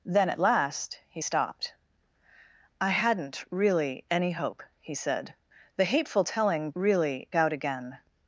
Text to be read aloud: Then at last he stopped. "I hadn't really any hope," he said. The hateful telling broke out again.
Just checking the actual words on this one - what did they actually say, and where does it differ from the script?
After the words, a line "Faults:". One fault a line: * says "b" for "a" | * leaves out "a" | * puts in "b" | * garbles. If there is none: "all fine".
Then at last he stopped. "I hadn't really any hope," he said. The hateful telling really out again.
Faults:
* says "really" for "broke"